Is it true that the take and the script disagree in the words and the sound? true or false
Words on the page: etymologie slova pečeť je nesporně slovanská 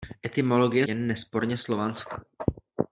true